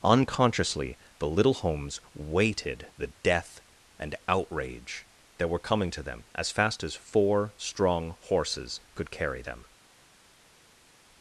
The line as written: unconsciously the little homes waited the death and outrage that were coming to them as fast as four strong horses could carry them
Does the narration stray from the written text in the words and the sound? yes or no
no